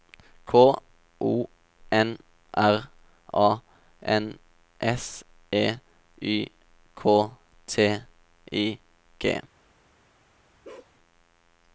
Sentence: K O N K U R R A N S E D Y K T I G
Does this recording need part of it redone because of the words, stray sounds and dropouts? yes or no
yes